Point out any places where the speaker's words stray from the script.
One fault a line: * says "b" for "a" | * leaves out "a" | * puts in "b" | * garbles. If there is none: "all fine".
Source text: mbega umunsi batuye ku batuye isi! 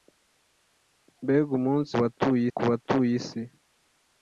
all fine